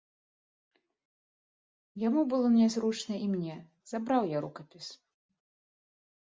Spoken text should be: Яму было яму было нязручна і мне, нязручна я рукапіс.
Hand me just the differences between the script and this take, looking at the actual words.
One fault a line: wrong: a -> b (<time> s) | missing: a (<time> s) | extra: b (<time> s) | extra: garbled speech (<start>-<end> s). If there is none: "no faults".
missing: яму было (2.5 s)
wrong: нязручна -> забраў (4.0 s)